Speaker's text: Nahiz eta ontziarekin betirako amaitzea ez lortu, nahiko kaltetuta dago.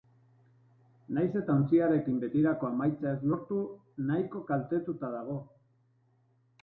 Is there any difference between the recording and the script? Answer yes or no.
no